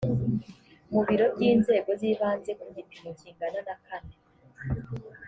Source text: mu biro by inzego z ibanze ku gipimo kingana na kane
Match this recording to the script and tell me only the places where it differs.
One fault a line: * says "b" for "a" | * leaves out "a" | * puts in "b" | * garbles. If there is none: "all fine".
all fine